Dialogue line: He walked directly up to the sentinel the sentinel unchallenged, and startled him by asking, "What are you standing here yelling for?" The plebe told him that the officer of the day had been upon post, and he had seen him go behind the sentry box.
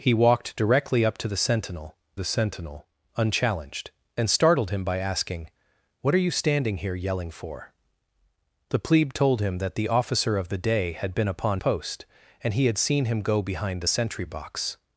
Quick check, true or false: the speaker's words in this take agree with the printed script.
true